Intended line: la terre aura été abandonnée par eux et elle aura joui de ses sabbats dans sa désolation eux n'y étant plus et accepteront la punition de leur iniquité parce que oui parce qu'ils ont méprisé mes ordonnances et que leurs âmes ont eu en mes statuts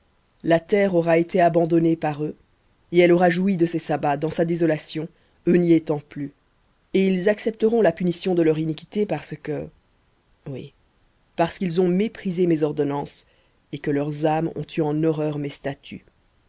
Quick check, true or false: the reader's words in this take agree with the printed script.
false